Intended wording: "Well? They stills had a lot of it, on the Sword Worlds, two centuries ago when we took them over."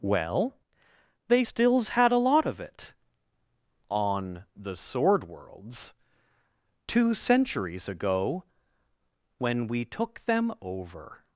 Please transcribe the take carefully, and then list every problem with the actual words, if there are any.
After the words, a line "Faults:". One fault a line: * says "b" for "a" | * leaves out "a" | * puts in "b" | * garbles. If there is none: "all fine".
"Well? They stills had a lot of it, on the Sword Worlds, two centuries ago when we took them over."
Faults:
all fine